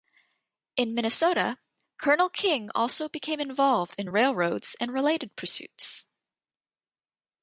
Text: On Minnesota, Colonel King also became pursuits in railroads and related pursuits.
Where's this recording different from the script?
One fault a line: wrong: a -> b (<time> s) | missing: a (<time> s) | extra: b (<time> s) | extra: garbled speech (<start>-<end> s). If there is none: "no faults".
wrong: On -> In (0.8 s)
wrong: pursuits -> involved (3.4 s)